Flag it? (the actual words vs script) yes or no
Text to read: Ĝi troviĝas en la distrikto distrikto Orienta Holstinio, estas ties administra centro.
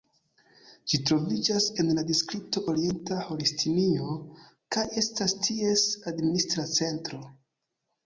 yes